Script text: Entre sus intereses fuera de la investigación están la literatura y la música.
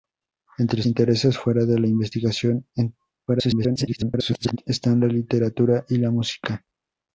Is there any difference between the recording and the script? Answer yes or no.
yes